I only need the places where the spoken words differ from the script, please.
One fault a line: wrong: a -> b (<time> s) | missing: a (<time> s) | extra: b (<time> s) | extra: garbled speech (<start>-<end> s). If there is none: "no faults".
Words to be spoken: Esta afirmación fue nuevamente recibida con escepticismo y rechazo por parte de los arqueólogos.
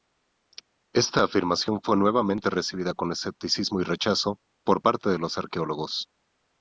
no faults